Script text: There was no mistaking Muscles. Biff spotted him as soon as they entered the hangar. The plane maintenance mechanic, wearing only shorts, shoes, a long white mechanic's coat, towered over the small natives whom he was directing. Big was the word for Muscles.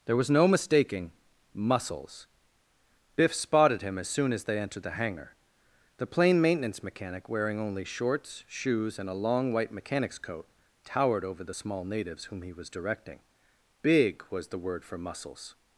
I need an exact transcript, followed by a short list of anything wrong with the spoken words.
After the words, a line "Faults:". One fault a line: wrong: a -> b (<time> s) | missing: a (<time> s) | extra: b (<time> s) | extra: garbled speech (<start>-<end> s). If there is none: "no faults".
There was no mistaking Muscles. Biff spotted him as soon as they entered the hangar. The plane maintenance mechanic, wearing only shorts, shoes, and a long white mechanic's coat, towered over the small natives whom he was directing. Big was the word for Muscles.
Faults:
extra: and (9.0 s)